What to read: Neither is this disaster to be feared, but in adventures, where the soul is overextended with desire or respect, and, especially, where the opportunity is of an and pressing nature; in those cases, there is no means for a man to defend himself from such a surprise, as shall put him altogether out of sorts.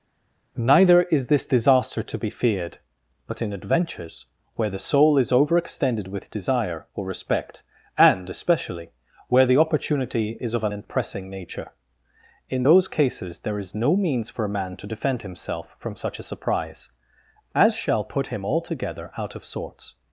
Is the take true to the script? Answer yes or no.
yes